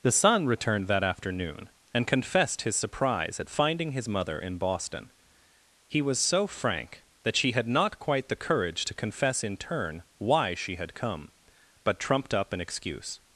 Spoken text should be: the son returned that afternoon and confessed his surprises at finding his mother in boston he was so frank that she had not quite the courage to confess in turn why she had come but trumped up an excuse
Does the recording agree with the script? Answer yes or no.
no